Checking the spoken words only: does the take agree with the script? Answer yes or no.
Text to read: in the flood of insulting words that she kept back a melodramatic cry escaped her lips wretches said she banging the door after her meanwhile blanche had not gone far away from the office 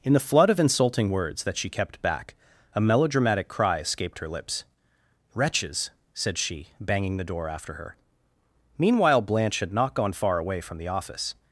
yes